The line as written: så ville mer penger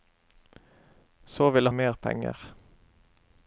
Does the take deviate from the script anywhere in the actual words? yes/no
no